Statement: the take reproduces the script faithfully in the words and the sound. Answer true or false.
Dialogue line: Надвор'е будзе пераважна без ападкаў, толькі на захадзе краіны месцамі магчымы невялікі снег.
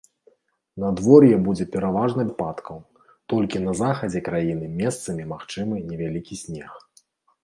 false